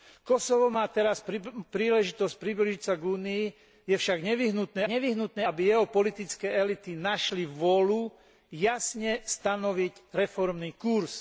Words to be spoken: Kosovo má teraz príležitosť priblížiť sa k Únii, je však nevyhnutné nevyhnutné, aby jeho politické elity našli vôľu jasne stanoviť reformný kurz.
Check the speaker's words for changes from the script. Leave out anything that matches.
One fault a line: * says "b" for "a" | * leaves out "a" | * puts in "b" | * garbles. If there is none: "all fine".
all fine